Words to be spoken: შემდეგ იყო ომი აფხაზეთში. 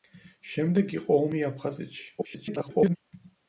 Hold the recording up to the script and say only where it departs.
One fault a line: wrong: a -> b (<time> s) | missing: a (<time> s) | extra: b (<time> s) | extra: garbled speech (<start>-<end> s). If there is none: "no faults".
extra: garbled speech (2.2-3.0 s)